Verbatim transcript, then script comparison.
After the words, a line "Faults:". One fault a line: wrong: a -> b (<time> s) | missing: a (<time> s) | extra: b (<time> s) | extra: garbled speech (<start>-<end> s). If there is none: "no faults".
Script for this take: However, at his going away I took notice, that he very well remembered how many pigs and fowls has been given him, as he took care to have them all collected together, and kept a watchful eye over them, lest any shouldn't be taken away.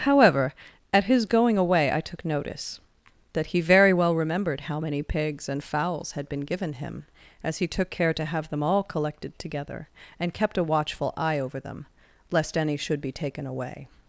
However, at his going away I took notice, that he very well remembered how many pigs and fowls had been given him, as he took care to have them all collected together, and kept a watchful eye over them, lest any should be taken away.
Faults:
wrong: has -> had (6.1 s)
wrong: shouldn't -> should (12.8 s)